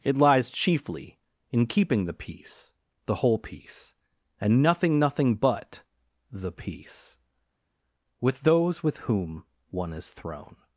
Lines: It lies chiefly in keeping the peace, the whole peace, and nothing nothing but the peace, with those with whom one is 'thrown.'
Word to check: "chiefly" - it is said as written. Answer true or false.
true